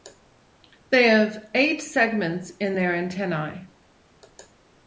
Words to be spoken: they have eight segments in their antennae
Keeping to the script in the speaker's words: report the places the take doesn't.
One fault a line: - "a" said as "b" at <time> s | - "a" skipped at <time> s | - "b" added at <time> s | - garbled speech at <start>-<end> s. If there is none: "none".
none